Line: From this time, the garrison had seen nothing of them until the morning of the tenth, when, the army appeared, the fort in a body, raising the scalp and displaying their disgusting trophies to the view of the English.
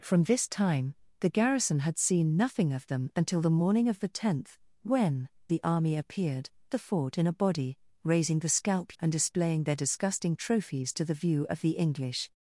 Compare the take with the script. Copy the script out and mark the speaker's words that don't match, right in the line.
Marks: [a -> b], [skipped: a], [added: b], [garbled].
From this time, the garrison had seen nothing of them until the morning of the tenth, when, the army appeared, the fort in a body, raising the scalp and displaying their disgusting trophies to the view of the English.